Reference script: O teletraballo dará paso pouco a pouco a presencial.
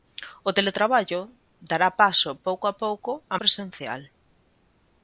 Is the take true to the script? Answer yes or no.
yes